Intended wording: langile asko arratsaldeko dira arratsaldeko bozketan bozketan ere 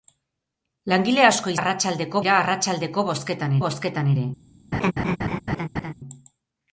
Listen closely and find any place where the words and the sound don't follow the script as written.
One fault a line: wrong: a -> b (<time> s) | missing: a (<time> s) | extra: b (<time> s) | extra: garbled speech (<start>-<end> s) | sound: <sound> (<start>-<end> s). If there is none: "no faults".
sound: laugh (4.7-5.9 s)